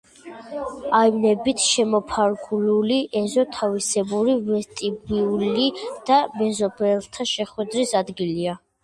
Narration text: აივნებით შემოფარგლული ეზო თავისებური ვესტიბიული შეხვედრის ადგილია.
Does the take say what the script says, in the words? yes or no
no